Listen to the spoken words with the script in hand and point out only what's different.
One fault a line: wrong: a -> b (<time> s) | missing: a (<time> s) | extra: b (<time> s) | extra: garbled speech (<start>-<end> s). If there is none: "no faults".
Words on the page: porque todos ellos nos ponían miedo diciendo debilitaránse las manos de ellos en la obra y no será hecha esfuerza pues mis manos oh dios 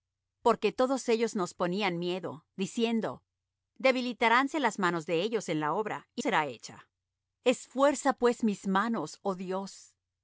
missing: no (6.2 s)